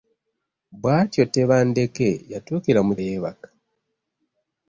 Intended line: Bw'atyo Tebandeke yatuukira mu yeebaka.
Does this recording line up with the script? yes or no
yes